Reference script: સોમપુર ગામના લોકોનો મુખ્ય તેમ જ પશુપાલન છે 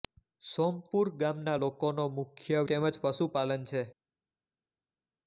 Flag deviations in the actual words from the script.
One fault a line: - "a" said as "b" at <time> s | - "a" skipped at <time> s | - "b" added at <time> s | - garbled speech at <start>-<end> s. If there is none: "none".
none